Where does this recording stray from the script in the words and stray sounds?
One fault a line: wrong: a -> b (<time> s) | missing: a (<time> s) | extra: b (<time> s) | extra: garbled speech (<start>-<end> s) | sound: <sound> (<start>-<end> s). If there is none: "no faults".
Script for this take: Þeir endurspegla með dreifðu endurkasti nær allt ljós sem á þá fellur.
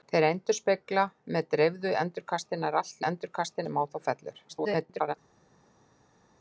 wrong: ljós -> endurkasti (3.1 s)
extra: garbled speech (4.5-5.1 s)